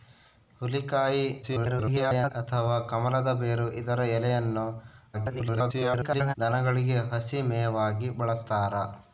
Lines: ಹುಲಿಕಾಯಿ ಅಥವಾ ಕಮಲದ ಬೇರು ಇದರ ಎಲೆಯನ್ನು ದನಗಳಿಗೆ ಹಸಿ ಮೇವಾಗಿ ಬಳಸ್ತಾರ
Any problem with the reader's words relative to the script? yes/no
yes